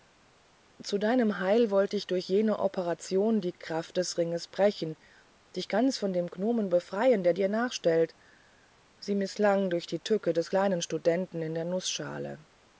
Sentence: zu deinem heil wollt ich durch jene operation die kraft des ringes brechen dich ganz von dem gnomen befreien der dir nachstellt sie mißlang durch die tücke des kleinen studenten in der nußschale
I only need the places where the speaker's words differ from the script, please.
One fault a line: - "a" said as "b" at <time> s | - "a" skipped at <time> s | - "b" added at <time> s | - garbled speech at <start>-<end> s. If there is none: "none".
none